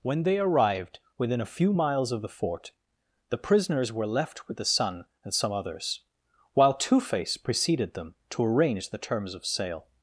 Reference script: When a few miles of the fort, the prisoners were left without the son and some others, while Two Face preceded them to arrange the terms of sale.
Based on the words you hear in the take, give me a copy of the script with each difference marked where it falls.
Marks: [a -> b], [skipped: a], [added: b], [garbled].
When [added: they arrived within] a few miles of the fort, the prisoners were left [without -> with] the son and some others, while Two Face preceded them to arrange the terms of sale.